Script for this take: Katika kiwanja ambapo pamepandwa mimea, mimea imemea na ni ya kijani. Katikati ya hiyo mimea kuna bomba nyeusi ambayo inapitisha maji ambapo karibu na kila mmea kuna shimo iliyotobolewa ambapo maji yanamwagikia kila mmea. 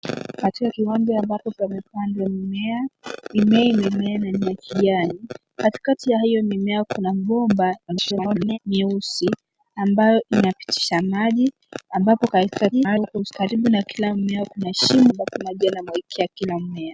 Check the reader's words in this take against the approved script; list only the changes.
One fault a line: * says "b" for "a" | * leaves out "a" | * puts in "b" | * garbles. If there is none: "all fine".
* garbles
* garbles
* leaves out "iliyotobolewa"